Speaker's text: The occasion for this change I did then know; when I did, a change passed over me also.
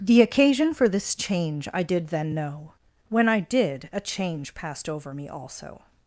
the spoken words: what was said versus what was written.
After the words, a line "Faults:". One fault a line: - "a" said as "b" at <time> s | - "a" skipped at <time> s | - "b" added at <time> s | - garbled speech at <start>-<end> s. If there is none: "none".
The occasion for this change I did then know; when I did, a change passed over me also.
Faults:
none